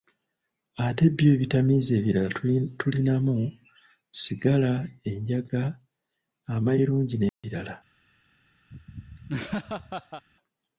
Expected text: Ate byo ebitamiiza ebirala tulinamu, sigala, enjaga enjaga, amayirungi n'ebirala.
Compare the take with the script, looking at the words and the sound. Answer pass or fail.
fail